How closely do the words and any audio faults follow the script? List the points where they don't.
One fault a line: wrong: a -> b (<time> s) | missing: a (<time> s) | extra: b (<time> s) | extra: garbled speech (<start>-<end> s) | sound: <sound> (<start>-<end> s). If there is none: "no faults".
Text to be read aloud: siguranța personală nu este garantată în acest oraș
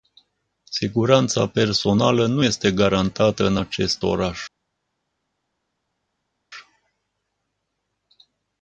no faults